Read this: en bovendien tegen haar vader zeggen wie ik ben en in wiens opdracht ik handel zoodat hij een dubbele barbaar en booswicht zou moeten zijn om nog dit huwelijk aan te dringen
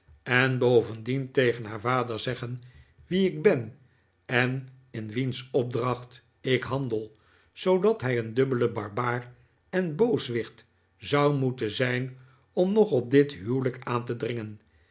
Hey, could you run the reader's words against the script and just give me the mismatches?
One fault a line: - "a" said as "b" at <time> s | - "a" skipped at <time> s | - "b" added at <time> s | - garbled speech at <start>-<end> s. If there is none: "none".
- "op" added at 12.9 s